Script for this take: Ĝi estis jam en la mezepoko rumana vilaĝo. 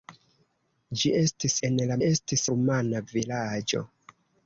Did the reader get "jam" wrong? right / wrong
wrong